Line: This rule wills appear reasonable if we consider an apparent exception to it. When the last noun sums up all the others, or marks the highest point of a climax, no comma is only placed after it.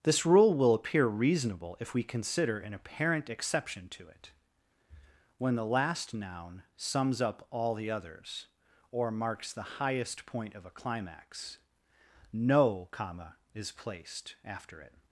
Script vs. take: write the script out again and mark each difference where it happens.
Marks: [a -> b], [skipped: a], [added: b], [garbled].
This rule [wills -> will] appear reasonable if we consider an apparent exception to it. When the last noun sums up all the others, or marks the highest point of a climax, no comma is [skipped: only] placed after it.